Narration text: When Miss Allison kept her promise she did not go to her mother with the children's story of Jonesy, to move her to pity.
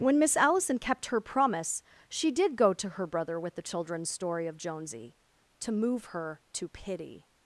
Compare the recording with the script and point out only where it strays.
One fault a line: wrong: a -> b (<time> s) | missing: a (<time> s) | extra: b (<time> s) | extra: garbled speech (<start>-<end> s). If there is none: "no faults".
missing: not (2.5 s)
wrong: mother -> brother (3.0 s)